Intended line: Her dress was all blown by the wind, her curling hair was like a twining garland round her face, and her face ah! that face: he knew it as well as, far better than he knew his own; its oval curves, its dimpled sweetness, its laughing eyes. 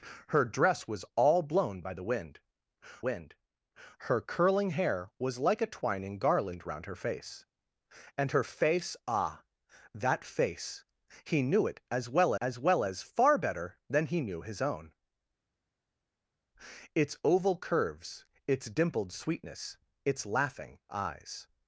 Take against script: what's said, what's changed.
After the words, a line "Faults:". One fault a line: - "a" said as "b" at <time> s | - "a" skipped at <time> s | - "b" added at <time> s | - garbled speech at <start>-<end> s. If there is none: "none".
Her dress was all blown by the wind wind, her curling hair was like a twining garland round her face, and her face ah! that face: he knew it as well as well as, far better than he knew his own; its oval curves, its dimpled sweetness, its laughing eyes.
Faults:
- "wind" added at 3.1 s
- "well as" added at 12.6 s